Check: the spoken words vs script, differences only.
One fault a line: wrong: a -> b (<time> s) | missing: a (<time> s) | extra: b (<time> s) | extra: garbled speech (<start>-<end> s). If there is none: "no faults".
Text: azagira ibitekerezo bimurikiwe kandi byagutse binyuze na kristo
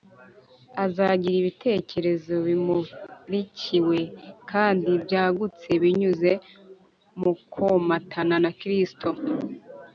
extra: mu komatana (7.2 s)